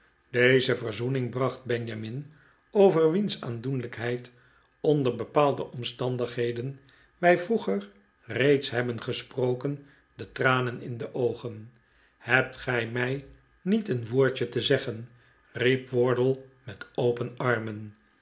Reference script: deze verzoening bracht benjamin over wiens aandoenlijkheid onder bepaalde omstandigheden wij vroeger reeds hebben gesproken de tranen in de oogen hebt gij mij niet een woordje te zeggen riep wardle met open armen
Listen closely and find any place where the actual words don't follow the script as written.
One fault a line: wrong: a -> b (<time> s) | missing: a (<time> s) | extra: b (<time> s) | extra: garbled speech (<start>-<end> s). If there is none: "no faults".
no faults